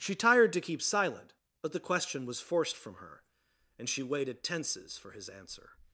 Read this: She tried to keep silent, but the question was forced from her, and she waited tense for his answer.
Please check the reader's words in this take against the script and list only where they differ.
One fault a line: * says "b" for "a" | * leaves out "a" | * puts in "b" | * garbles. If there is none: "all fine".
* says "tired" for "tried"
* says "tenses" for "tense"